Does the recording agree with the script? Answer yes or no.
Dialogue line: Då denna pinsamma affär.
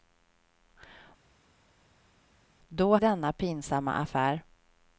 yes